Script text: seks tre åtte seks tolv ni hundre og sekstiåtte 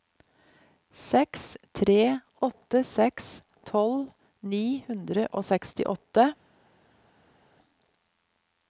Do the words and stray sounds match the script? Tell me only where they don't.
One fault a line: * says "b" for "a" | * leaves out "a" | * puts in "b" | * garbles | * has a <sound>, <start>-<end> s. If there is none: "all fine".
all fine